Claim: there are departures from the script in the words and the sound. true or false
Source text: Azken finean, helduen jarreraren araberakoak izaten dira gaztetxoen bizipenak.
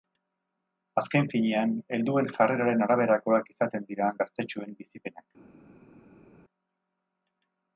false